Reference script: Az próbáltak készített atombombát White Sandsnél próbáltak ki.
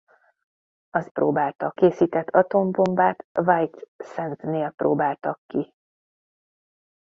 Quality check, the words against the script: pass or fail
pass